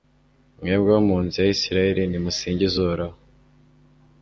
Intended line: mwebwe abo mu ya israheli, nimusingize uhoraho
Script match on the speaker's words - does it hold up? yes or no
no